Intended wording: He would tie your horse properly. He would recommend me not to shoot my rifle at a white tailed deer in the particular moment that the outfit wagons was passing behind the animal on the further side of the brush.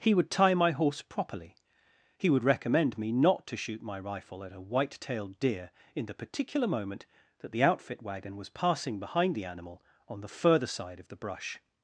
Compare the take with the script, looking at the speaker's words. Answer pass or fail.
fail